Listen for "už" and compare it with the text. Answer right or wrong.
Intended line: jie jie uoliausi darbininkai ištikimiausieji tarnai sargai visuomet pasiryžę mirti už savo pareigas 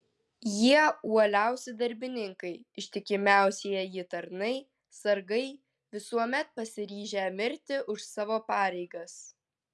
right